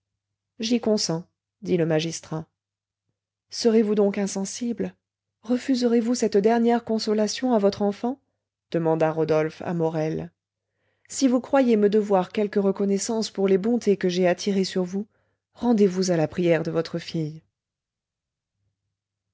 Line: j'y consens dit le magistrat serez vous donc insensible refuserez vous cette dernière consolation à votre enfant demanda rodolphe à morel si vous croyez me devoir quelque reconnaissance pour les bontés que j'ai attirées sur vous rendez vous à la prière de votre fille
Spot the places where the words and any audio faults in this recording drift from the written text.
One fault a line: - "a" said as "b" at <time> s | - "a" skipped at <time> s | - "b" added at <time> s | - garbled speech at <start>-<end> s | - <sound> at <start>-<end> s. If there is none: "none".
none